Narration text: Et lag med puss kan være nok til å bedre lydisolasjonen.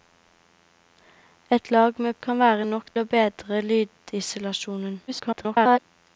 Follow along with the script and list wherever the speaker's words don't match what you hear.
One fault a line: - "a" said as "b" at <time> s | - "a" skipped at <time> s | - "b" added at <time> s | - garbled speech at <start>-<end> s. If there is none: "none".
- "puss" skipped at 2.1 s
- "til" skipped at 2.9 s
- garbled speech at 5.1-5.8 s